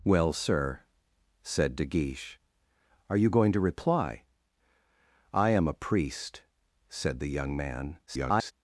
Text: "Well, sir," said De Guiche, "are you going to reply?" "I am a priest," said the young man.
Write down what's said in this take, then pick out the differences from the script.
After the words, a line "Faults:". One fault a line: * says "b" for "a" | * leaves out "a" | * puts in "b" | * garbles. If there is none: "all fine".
"Well, sir," said De Guiche, "are you going to reply?" "I am a priest," said the young man. [garbled]
Faults:
* garbles